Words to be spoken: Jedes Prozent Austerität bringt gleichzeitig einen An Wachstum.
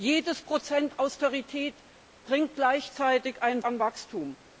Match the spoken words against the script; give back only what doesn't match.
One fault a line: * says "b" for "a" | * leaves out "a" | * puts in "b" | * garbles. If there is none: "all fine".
all fine